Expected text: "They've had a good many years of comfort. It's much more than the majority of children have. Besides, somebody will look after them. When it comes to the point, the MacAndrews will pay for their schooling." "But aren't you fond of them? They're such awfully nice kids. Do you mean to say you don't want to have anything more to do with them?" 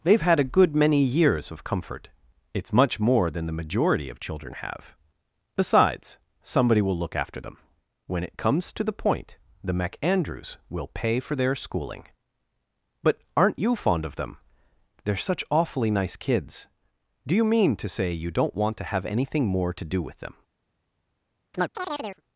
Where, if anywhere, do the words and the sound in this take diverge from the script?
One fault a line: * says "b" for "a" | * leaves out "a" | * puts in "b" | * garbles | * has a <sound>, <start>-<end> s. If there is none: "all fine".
* has a chirp, 21.5-22.2 s